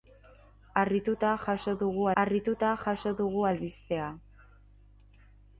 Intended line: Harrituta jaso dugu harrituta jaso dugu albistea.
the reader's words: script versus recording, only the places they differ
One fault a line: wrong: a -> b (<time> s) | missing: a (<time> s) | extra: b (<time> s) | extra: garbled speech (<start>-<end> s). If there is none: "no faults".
no faults